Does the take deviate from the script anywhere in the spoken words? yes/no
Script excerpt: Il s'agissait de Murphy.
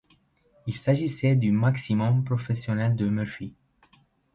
yes